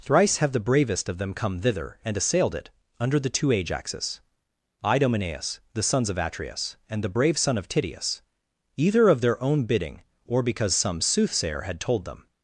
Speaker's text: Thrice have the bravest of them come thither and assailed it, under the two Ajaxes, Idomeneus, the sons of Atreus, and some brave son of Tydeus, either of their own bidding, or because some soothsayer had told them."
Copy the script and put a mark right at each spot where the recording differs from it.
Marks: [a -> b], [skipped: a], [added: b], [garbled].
Thrice have the bravest of them come thither and assailed it, under the two Ajaxes, Idomeneus, the sons of Atreus, and [some -> the] brave son of Tydeus, either of their own bidding, or because some soothsayer had told them."